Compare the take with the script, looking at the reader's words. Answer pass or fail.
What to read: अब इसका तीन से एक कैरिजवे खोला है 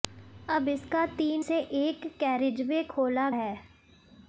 pass